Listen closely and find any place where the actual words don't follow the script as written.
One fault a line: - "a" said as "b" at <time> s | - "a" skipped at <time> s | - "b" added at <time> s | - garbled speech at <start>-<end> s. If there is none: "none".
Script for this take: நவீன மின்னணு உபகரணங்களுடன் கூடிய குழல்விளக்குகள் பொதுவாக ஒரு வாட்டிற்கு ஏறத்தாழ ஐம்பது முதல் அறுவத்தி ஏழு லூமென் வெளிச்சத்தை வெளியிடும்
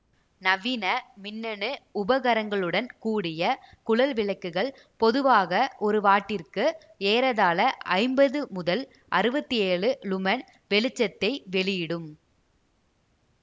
none